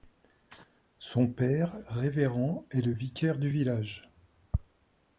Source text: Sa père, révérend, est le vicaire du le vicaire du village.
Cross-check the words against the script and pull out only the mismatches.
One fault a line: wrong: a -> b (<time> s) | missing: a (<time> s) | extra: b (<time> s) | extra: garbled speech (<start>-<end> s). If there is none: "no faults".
wrong: Sa -> Son (1.0 s)
missing: le vicaire du (3.5 s)